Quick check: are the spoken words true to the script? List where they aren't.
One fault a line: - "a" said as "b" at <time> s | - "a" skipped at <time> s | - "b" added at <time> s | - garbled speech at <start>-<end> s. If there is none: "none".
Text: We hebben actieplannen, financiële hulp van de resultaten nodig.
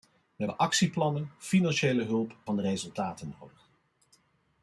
none